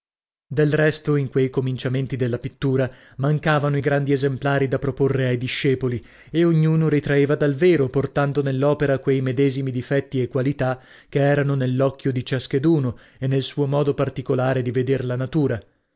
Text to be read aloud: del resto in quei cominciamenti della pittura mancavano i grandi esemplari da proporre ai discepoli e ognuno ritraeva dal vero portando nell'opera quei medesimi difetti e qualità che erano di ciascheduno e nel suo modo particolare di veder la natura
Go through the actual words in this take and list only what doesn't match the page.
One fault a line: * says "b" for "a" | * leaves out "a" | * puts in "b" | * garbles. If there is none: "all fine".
* puts in "nell'occhio"